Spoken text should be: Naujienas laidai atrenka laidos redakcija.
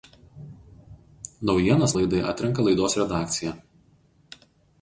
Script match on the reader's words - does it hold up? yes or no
yes